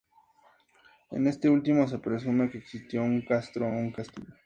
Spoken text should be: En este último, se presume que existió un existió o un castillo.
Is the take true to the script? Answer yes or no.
no